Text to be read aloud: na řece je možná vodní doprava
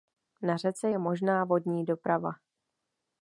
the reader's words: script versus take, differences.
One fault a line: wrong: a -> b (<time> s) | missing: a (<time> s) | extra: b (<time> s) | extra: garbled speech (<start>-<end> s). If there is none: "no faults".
no faults